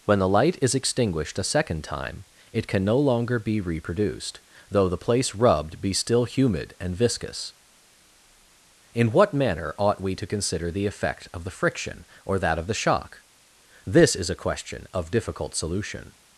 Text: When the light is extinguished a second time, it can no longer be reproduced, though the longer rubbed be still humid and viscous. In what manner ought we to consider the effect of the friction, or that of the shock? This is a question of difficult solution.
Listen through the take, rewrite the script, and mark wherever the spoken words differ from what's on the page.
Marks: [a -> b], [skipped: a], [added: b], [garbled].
When the light is extinguished a second time, it can no longer be reproduced, though the [longer -> place] rubbed be still humid and viscous. In what manner ought we to consider the effect of the friction, or that of the shock? This is a question of difficult solution.